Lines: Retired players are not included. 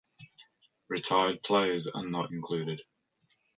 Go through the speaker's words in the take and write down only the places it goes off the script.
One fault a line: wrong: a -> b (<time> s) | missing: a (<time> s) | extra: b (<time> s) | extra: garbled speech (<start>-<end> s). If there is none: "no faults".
no faults